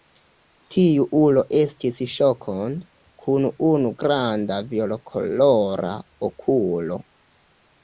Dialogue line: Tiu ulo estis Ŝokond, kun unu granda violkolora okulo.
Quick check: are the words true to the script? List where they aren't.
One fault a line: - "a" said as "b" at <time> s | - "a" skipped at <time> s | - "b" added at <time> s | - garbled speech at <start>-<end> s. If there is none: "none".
none